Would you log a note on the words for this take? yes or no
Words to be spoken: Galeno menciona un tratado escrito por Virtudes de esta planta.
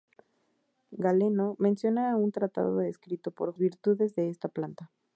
no